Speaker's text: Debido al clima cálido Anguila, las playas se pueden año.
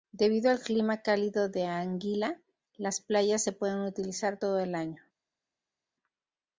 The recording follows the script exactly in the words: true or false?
false